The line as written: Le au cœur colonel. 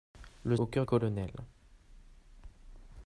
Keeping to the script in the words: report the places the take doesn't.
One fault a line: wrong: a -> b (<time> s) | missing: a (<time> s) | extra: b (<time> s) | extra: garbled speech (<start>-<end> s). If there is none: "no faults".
no faults